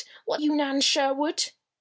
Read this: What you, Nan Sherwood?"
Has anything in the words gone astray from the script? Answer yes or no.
no